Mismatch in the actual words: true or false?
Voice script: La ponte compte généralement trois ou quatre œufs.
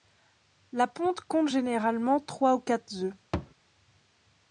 false